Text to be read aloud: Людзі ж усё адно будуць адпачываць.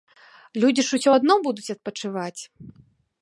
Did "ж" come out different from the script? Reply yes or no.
no